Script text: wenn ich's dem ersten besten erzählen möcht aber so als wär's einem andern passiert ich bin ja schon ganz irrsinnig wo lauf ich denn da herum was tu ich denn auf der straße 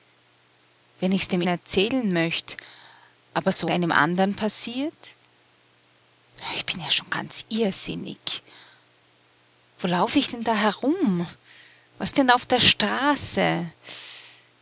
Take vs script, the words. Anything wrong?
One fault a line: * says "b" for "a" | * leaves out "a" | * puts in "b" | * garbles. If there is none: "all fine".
* leaves out "ersten besten"
* leaves out "als wär's"
* leaves out "tu ich"